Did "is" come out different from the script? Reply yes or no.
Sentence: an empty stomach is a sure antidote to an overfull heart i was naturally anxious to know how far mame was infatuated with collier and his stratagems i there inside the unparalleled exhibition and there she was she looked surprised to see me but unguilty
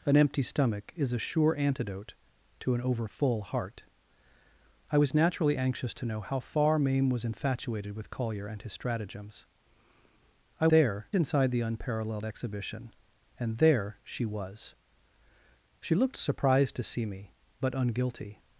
no